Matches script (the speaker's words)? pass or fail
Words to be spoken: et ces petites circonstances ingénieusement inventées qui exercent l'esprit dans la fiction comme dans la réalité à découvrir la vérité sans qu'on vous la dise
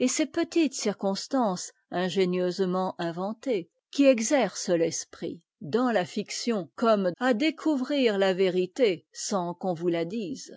fail